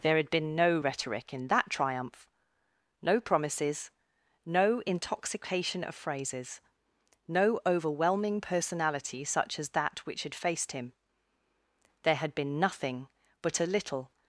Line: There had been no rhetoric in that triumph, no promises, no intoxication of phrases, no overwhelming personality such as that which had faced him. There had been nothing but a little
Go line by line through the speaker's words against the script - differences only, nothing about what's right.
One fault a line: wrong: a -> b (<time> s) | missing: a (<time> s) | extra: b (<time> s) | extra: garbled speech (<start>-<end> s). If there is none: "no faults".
no faults